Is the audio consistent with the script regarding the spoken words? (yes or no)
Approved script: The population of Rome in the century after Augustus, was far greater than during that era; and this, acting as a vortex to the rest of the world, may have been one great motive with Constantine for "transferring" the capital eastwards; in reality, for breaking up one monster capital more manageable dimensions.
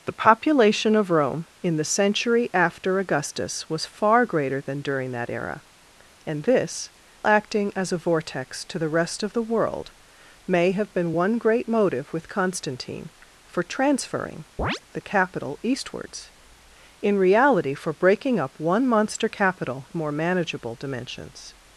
yes